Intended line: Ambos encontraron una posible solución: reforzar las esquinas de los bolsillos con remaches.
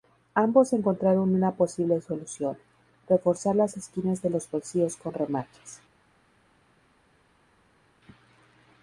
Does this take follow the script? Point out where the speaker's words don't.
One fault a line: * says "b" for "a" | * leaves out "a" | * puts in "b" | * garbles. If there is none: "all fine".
all fine